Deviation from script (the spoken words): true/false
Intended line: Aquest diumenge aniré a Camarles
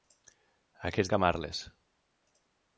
true